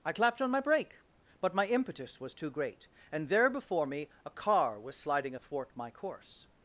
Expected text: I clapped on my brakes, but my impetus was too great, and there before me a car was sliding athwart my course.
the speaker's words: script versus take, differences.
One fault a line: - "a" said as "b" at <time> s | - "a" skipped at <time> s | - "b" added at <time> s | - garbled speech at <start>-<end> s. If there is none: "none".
- "brakes" said as "brake" at 0.6 s